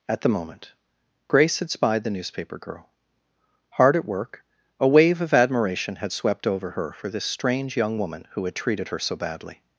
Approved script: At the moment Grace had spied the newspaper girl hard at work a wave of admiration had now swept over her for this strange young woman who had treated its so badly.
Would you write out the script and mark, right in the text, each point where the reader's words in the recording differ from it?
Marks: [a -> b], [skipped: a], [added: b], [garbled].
At the moment Grace had spied the newspaper girl hard at work a wave of admiration had [skipped: now] swept over her for this strange young woman who had treated [its -> her] so badly.